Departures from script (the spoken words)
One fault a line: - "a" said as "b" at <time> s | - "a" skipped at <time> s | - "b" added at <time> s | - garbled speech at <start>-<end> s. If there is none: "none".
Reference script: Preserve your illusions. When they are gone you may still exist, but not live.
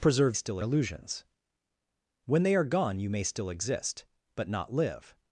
- "your" said as "still" at 0.3 s